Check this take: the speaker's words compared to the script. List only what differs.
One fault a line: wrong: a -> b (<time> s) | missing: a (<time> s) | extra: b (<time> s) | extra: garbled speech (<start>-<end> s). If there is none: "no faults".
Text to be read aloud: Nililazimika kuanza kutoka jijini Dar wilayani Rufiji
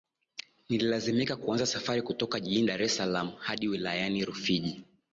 extra: safari (1.6 s)
extra: es Salaam hadi (2.8 s)